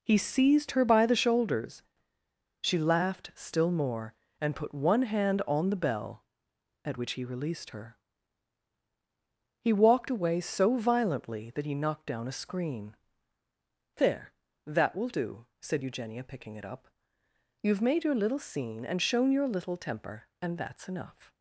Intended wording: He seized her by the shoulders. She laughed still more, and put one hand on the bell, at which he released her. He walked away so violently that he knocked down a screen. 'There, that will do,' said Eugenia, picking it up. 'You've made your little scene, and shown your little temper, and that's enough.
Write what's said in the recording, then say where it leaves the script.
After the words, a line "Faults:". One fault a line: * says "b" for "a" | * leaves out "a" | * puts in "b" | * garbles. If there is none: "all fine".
He seized her by the shoulders. She laughed still more, and put one hand on the bell, at which he released her. He walked away so violently that he knocked down a screen. 'There, that will do,' said Eugenia, picking it up. 'You've made your little scene, and shown your little temper, and that's enough.
Faults:
all fine